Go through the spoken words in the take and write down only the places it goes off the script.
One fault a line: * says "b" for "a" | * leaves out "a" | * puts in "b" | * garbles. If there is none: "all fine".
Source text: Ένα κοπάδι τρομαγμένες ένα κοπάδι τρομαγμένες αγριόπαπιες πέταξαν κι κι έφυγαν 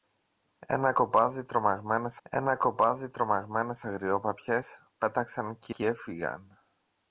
all fine